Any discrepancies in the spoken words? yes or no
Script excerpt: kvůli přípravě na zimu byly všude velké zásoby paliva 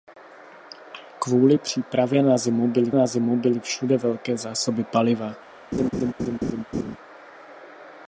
yes